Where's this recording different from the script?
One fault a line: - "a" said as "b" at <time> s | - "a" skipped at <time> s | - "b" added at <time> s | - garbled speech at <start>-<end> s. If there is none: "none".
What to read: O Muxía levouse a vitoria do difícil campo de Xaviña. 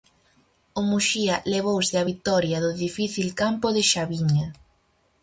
none